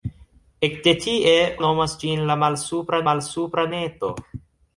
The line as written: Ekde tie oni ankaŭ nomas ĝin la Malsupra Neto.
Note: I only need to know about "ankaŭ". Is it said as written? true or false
false